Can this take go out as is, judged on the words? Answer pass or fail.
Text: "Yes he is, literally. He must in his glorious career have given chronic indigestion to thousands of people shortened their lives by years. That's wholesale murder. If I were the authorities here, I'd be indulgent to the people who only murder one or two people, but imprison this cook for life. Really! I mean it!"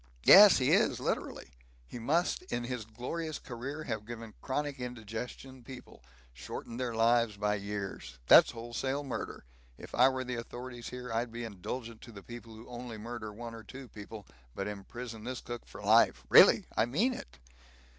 fail